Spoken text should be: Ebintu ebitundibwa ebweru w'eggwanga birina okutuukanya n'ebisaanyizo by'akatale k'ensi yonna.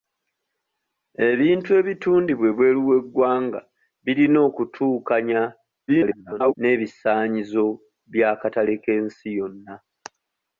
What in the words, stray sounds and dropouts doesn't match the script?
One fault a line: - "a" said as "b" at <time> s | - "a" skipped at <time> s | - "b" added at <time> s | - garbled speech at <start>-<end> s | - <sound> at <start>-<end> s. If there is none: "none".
- garbled speech at 5.9-6.6 s